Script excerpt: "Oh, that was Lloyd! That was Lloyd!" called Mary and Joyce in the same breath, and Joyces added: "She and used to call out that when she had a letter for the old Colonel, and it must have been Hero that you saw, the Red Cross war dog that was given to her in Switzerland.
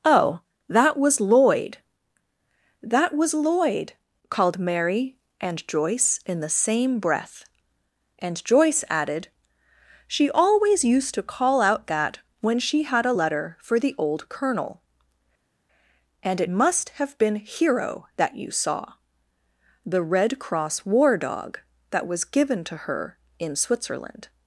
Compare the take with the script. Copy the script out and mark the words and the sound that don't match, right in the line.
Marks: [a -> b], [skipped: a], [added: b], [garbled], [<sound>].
"Oh, that was Lloyd! That was Lloyd!" called Mary and Joyce in the same breath, and [Joyces -> Joyce] added: "She [and -> always] used to call out that when she had a letter for the old Colonel, and it must have been Hero that you saw, the Red Cross war dog that was given to her in Switzerland.